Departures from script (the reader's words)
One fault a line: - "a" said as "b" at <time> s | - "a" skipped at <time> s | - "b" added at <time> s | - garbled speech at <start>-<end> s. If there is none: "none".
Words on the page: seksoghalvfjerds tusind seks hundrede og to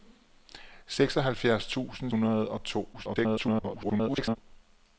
- "seks" skipped at 2.1 s
- garbled speech at 2.9-4.4 s